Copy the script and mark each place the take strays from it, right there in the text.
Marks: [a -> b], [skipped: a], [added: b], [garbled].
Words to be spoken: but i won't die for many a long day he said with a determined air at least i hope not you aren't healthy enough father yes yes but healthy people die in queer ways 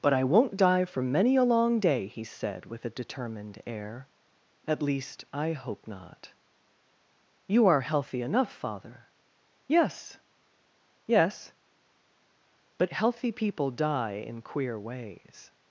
but i won't die for many a long day he said with a determined air at least i hope not you [aren't -> are] healthy enough father yes yes but healthy people die in queer ways